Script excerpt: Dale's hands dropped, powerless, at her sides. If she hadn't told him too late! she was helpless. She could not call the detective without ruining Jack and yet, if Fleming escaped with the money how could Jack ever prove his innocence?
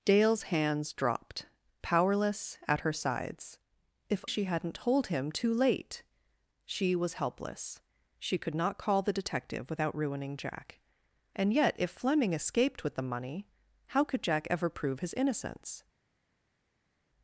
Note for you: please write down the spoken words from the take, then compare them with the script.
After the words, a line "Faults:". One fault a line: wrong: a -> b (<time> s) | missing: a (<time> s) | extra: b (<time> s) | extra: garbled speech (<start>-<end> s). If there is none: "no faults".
Dale's hands dropped, powerless, at her sides. If she hadn't told him too late! she was helpless. She could not call the detective without ruining Jack and yet, if Fleming escaped with the money how could Jack ever prove his innocence?
Faults:
no faults